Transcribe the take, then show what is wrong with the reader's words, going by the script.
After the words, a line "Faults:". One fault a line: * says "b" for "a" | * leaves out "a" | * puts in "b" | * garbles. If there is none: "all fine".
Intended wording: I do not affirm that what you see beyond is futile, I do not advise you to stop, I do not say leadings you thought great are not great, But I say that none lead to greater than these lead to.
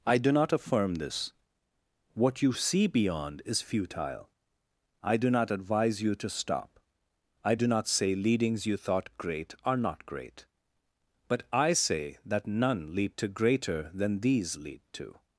I do not affirm this what you see beyond is futile, I do not advise you to stop, I do not say leadings you thought great are not great, But I say that none lead to greater than these lead to.
Faults:
* says "this" for "that"